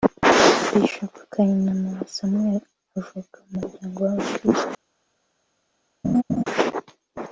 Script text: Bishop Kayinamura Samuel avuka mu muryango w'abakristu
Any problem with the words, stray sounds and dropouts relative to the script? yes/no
yes